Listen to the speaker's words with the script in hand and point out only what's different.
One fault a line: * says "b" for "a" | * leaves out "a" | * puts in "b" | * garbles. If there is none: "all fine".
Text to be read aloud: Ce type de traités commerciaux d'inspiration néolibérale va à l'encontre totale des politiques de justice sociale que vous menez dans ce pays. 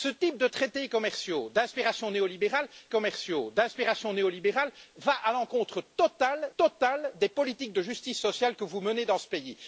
* puts in "commerciaux d'inspiration néolibérale"
* puts in "totale"